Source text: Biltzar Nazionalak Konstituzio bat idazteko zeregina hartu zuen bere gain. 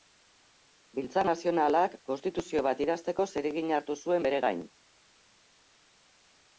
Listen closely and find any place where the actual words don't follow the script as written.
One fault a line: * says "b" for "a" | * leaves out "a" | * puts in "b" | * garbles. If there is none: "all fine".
all fine